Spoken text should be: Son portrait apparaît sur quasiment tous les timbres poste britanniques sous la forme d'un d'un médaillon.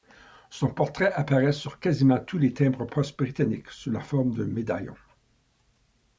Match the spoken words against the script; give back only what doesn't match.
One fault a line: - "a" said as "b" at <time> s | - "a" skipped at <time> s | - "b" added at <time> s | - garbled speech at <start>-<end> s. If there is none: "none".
- "d'un" skipped at 4.5 s